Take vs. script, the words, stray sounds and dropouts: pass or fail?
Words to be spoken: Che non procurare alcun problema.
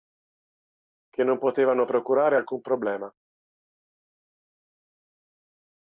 fail